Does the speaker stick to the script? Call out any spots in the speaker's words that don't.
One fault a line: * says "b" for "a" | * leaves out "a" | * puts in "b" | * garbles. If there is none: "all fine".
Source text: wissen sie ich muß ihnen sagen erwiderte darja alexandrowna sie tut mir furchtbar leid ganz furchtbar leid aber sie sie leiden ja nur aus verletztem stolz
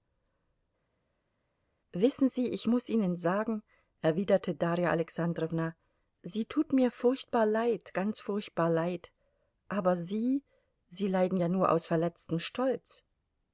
all fine